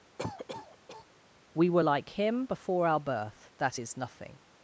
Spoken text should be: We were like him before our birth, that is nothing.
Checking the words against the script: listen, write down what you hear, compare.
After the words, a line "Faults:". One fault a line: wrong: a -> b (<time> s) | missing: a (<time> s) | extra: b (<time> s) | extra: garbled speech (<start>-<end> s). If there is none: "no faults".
We were like him before our birth, that is nothing.
Faults:
no faults